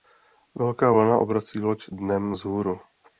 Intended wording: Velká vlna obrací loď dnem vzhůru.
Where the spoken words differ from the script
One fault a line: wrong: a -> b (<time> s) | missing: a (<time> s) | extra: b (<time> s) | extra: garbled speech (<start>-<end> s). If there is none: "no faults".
no faults